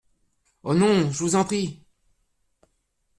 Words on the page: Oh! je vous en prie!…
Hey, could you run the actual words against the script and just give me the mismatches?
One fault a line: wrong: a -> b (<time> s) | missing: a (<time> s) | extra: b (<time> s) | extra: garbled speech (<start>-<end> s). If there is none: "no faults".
extra: non (0.7 s)